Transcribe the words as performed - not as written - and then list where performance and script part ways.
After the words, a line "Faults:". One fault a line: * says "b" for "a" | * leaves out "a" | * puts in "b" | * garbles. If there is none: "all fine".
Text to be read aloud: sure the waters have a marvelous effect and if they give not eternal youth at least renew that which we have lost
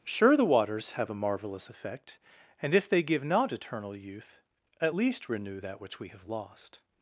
sure the waters have a marvelous effect and if they give not eternal youth at least renew that which we have lost
Faults:
all fine